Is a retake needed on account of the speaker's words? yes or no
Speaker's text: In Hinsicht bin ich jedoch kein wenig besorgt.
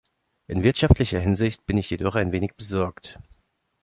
yes